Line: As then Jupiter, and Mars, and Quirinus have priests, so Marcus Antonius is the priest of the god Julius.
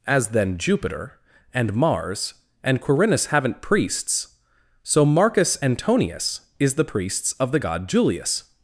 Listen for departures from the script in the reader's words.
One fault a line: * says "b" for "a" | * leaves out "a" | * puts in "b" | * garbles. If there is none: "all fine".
* says "haven't" for "have"
* says "priests" for "priest"